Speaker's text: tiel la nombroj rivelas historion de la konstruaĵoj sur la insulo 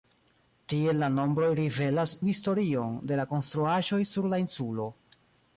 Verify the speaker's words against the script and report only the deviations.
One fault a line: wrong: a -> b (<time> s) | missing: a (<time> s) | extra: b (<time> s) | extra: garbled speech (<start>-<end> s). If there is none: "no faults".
no faults